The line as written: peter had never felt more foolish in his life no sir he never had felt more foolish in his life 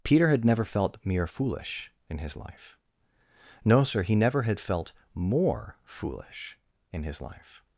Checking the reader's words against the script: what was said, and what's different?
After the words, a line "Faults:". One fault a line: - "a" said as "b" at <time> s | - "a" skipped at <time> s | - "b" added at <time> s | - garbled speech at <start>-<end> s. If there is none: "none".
peter had never felt mere foolish in his life no sir he never had felt more foolish in his life
Faults:
- "more" said as "mere" at 1.0 s